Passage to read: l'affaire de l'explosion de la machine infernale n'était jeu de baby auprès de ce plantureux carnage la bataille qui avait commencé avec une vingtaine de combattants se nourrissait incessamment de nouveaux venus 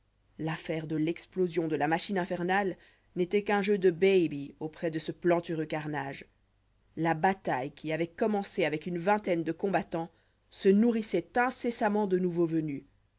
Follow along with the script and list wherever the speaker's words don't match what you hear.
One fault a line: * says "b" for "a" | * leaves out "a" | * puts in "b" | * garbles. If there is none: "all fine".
* puts in "qu'un"